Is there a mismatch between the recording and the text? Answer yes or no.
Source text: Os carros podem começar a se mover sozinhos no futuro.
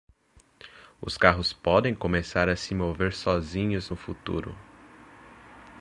no